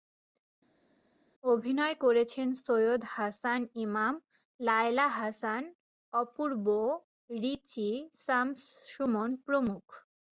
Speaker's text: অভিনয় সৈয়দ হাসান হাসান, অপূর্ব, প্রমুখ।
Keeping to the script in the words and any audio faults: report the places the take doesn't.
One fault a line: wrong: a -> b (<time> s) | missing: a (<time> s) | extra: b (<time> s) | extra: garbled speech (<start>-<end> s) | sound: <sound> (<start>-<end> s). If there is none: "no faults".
extra: করেছেন (2.0 s)
extra: ইমাম লায়লা (3.8 s)
extra: রিচি শামস সুমন (7.4 s)